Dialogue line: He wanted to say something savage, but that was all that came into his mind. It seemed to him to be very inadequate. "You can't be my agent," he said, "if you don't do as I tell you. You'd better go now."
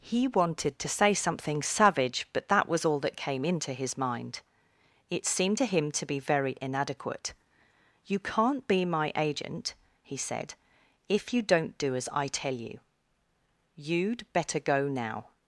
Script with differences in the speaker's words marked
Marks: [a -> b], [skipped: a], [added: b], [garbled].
He wanted to say something savage, but that was all that came into his mind. It seemed to him to be very inadequate. "You can't be my agent," he said, "if you don't do as I tell you. You'd better go now."